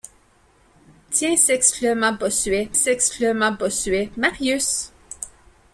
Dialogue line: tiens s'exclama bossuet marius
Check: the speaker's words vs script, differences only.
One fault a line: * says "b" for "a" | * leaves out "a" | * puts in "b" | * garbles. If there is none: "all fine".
* puts in "s'exclama bossuet"